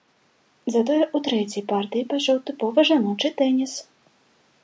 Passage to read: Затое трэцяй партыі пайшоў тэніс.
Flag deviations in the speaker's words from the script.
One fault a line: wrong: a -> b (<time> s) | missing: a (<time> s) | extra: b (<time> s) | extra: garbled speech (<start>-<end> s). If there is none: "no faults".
extra: ў (1.0 s)
extra: тыповы жаночы (2.5 s)